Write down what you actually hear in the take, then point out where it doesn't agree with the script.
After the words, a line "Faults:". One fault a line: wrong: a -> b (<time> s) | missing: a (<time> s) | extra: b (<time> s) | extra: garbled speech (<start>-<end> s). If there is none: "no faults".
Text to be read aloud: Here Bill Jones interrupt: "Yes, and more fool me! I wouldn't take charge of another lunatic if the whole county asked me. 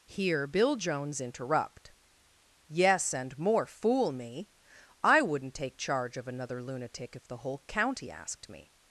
Here Bill Jones interrupt: "Yes, and more fool me! I wouldn't take charge of another lunatic if the whole county asked me.
Faults:
no faults